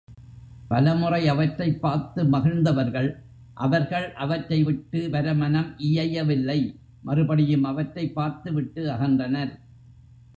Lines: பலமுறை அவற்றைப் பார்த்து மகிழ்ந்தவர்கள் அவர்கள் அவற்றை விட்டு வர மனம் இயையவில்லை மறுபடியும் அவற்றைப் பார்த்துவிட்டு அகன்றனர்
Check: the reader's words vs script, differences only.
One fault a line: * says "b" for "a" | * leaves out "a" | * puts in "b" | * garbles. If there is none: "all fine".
all fine